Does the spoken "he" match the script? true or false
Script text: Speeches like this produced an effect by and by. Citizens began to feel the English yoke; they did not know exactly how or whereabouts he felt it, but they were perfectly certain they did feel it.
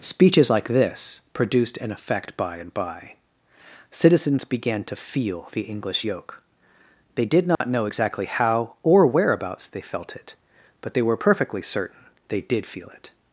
false